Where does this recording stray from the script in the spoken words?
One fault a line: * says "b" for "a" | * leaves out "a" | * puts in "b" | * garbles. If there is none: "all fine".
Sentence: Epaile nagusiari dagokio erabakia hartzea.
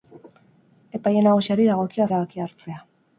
all fine